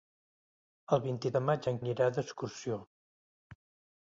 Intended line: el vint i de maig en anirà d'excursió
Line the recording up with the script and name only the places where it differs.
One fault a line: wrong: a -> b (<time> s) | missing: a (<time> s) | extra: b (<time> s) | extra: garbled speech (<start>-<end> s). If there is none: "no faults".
no faults